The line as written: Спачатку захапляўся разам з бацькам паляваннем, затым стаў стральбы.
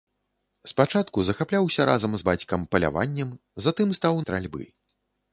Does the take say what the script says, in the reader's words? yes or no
yes